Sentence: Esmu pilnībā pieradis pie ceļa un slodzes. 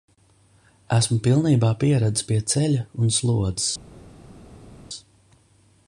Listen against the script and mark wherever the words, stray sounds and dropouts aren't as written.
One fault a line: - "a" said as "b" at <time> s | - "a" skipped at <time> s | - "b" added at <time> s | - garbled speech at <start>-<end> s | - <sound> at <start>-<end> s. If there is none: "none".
none